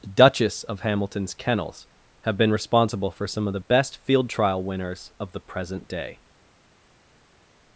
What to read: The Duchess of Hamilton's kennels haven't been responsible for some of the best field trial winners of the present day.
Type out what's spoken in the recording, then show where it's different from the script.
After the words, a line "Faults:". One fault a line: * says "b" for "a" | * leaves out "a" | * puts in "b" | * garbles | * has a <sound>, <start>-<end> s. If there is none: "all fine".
The Duchess of Hamilton's kennels have been responsible for some of the best field trial winners of the present day.
Faults:
* says "have" for "haven't"